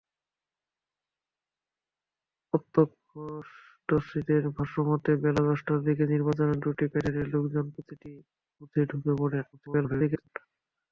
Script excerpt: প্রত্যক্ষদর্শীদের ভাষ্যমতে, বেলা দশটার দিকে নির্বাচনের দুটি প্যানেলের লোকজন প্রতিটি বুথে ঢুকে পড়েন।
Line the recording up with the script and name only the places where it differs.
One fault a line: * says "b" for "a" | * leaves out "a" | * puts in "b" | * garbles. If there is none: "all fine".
* garbles